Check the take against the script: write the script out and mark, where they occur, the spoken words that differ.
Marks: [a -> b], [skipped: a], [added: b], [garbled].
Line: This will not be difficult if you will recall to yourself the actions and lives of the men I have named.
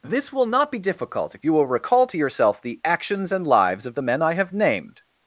This will not be difficult if you will recall to yourself the actions and lives of the men I have named.